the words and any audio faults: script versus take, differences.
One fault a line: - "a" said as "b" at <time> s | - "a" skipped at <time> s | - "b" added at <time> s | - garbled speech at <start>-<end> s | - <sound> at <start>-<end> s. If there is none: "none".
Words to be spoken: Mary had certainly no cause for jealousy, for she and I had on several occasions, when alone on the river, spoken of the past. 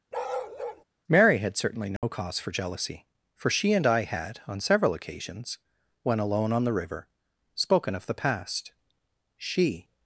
- bark at 0.1-0.8 s
- dropout at 2.0-2.0 s
- "She" added at 9.4 s